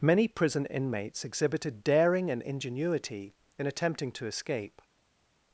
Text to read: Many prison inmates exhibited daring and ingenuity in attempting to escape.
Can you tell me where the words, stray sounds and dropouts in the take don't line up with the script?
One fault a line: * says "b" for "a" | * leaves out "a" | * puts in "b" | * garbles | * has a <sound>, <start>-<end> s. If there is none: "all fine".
all fine